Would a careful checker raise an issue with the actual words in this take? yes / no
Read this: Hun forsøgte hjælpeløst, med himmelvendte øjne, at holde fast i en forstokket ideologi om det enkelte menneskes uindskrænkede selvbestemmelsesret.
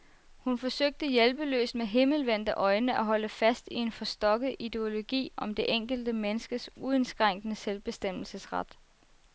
no